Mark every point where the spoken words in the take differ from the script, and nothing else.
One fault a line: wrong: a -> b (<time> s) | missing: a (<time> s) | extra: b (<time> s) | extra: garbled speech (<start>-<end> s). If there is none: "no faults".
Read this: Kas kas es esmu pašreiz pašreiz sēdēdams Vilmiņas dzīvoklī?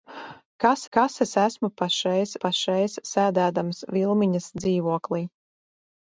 no faults